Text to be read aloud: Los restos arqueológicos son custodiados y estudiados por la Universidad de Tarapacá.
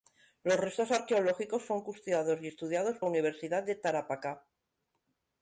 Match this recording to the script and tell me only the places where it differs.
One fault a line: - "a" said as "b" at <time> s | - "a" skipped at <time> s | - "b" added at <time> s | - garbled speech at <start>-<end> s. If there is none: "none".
- "por" skipped at 3.0 s